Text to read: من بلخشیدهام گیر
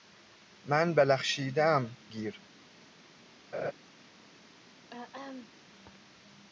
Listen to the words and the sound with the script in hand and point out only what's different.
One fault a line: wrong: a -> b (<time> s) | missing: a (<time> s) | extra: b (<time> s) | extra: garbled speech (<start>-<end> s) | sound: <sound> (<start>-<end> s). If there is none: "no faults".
sound: laugh (3.5-3.7 s)
sound: throat clearing (4.9-5.5 s)